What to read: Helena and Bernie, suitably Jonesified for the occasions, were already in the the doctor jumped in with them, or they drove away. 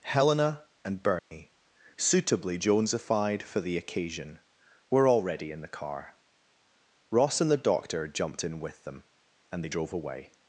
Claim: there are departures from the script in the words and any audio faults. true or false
true